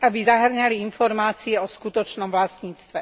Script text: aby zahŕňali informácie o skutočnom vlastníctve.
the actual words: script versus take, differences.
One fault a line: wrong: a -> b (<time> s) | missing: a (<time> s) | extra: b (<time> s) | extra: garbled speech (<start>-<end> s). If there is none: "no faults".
no faults